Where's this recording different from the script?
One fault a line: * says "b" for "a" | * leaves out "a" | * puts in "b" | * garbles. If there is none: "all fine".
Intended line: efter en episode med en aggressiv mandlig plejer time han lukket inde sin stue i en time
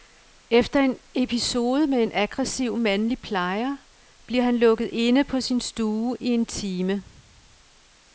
* says "bliver" for "time"
* puts in "på"